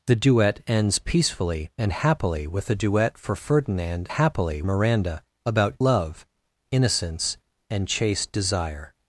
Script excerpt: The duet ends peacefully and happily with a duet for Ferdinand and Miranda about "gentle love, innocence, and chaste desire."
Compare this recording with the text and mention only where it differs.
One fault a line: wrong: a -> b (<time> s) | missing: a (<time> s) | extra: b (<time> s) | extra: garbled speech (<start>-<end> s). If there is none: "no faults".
wrong: and -> happily (4.1 s)
missing: gentle (5.8 s)